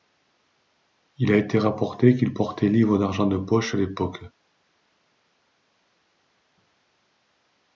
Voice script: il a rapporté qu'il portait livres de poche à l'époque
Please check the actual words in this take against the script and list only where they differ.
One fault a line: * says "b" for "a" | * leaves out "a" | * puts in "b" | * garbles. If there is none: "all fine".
* puts in "été"
* puts in "d'argent"